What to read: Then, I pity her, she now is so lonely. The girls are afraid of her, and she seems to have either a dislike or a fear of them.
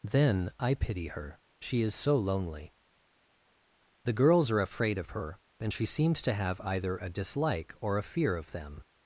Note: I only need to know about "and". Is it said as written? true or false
true